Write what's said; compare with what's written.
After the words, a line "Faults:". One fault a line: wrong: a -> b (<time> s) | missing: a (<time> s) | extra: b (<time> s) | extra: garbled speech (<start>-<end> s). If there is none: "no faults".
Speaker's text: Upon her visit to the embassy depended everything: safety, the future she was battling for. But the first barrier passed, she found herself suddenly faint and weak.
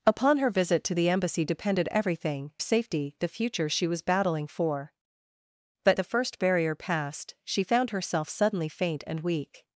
Upon her visit to the embassy depended everything: safety, the future she was battling for. But the first barrier passed, she found herself suddenly faint and weak.
Faults:
no faults